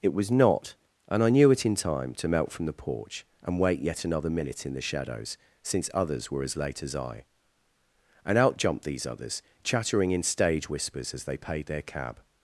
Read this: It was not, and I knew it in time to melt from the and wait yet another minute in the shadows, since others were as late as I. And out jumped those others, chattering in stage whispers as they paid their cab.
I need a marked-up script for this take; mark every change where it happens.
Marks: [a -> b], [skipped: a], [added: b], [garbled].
It was not, and I knew it in time to melt from the [added: porch] and wait yet another minute in the shadows, since others were as late as I. And out jumped [those -> these] others, chattering in stage whispers as they paid their cab.